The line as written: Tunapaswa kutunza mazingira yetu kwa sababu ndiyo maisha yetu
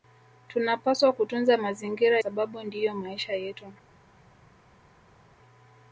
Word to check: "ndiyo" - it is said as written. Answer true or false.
true